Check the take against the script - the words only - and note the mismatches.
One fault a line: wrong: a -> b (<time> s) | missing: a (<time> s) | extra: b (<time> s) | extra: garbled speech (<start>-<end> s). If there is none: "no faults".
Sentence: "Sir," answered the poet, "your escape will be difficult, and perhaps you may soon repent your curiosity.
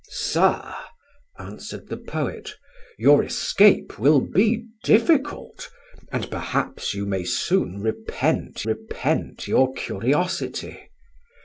extra: repent (8.7 s)